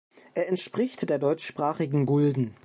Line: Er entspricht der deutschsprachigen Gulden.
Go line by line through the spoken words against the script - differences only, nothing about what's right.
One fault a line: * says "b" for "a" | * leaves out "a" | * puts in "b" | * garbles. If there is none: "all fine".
all fine